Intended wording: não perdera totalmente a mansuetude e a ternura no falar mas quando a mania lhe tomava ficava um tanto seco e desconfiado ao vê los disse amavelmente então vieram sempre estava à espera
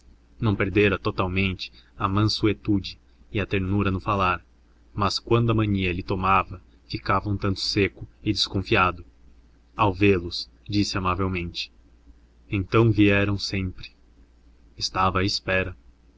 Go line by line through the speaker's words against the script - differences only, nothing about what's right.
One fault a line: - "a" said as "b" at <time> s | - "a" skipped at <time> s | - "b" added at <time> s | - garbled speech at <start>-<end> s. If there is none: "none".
none